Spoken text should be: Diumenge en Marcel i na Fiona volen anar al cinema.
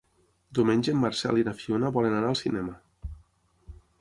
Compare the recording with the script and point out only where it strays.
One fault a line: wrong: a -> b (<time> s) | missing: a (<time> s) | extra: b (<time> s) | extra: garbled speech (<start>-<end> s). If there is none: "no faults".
no faults